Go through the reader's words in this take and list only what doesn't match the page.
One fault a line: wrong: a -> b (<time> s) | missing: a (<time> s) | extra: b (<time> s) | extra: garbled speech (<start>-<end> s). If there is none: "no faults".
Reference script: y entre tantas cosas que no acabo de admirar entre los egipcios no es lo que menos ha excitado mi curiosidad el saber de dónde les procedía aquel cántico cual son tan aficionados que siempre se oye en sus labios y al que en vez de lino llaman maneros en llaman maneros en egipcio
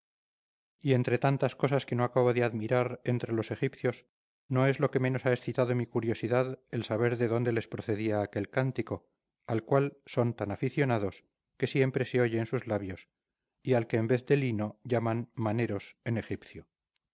extra: al (9.4 s)
missing: llaman maneros en (16.2 s)